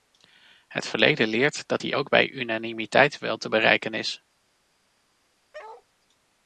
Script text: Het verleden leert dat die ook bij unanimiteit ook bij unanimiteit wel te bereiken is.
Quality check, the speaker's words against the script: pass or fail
fail